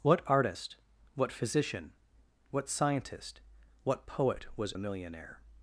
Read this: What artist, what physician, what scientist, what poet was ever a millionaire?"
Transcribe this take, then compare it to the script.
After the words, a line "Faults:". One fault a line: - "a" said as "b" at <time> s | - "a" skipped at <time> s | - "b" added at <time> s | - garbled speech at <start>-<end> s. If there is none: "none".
What artist, what physician, what scientist, what poet was a millionaire?"
Faults:
- "ever" skipped at 4.7 s